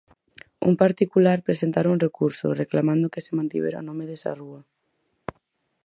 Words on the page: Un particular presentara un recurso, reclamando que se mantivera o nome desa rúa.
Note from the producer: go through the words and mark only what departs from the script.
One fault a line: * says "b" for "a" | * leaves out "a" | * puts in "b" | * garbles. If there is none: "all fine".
all fine